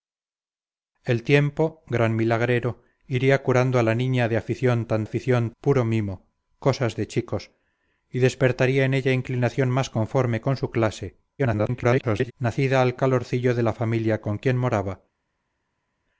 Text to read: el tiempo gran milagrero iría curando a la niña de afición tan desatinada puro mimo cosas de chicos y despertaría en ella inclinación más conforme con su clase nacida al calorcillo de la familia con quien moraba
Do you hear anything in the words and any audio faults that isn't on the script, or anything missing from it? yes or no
yes